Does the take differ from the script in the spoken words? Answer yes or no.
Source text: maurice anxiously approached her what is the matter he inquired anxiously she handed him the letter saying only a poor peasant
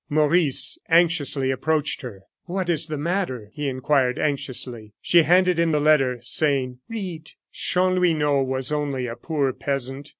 yes